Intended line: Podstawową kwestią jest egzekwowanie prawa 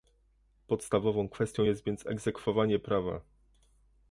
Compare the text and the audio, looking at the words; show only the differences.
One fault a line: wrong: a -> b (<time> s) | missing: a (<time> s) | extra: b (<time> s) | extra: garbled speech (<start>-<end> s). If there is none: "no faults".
extra: więc (1.8 s)